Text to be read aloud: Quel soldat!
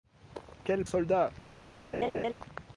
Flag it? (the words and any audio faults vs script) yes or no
yes